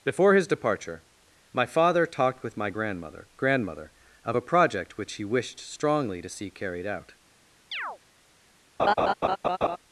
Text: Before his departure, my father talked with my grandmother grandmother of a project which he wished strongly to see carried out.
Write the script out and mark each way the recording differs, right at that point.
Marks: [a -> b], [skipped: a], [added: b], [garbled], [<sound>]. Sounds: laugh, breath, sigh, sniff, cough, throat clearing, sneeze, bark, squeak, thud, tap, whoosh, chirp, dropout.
Before his departure, my father talked with my grandmother grandmother of a project which he wished strongly to see carried out. [chirp] [laugh]